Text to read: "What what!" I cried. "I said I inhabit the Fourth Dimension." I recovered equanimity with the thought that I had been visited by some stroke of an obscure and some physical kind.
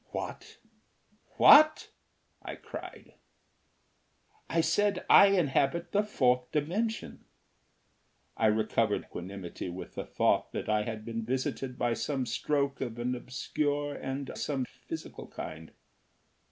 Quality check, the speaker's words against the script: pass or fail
pass